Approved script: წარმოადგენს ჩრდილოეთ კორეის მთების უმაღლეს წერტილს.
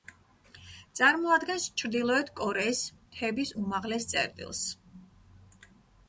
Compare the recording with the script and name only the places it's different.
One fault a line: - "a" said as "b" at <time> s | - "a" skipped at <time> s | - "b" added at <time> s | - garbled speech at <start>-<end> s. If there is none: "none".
none